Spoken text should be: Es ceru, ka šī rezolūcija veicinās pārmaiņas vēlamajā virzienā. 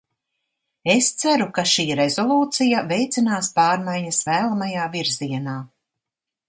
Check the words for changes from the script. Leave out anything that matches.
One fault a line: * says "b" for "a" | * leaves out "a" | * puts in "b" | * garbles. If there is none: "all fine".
all fine